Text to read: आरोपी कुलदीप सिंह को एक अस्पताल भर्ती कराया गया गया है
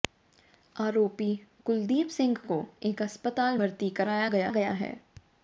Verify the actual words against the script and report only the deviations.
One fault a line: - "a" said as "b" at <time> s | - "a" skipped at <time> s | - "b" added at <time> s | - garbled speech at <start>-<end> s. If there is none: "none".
none